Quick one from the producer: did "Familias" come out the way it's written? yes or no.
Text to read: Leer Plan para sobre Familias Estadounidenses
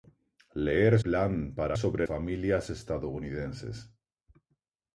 yes